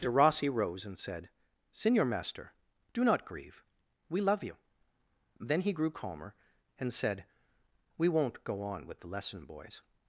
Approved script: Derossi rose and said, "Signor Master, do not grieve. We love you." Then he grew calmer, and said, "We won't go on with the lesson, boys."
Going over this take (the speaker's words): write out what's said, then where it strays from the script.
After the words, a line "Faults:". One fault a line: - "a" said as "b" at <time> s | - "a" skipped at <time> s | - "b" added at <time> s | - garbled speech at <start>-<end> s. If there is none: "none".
Derossi rose and said, "Signor Master, do not grieve. We love you." Then he grew calmer, and said, "We won't go on with the lesson, boys."
Faults:
none